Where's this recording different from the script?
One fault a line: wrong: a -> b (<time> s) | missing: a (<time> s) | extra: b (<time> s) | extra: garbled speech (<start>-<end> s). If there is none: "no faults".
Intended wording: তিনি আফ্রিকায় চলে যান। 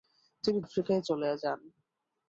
no faults